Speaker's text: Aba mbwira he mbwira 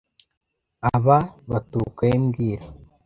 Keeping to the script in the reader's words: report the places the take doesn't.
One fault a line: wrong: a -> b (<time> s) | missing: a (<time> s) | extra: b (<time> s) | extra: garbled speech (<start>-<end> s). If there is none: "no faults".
wrong: mbwira -> baturuka (1.5 s)